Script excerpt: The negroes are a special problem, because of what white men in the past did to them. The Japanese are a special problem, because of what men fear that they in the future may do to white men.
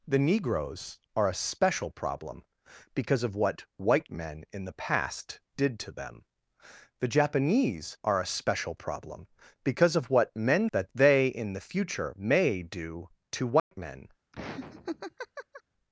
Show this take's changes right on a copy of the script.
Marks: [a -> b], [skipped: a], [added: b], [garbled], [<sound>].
The negroes are a special problem, because of what white men in the past did to them. The Japanese are a special problem, because of what men [skipped: fear] that they in the future may do to white [dropout] men. [laugh]